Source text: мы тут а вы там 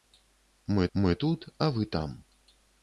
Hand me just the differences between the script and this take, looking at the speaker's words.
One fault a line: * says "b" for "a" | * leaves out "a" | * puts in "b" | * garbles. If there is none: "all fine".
* puts in "мы"